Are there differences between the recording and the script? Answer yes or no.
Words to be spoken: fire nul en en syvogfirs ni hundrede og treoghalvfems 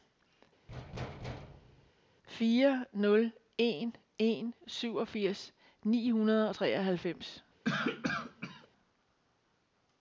no